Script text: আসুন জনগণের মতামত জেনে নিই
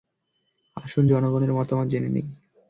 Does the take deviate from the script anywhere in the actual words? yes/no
no